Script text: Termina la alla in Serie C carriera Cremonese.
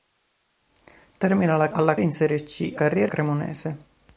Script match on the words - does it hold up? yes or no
yes